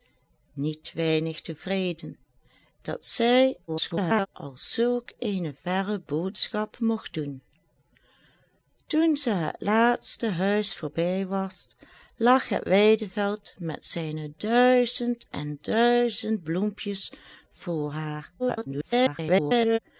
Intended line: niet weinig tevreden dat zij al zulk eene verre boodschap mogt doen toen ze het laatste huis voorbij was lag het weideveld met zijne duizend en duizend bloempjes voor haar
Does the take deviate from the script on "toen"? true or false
false